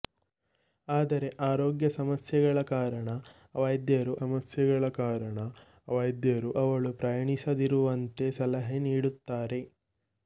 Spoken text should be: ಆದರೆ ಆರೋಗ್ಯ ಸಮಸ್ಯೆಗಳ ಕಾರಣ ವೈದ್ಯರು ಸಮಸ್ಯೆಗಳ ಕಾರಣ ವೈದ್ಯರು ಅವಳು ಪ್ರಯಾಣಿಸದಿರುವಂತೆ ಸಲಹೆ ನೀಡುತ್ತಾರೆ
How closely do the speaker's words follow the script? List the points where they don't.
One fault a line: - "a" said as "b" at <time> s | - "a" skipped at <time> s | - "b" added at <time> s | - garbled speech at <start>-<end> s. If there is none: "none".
none